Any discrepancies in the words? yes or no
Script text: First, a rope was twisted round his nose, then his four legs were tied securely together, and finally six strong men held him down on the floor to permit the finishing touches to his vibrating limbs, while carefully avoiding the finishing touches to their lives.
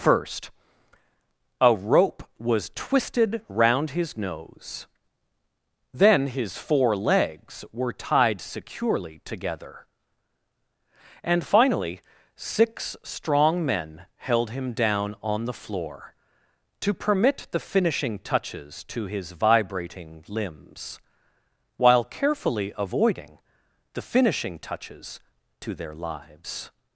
no